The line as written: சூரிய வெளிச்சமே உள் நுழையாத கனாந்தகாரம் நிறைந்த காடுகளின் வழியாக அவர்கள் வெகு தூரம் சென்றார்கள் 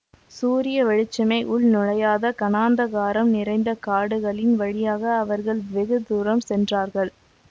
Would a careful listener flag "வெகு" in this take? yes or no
no